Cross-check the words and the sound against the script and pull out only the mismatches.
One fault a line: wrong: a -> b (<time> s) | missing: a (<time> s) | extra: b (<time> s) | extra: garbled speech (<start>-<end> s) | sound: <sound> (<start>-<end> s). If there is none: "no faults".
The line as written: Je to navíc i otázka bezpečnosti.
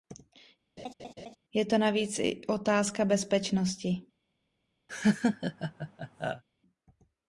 sound: laugh (0.8-1.4 s)
sound: laugh (4.9-6.4 s)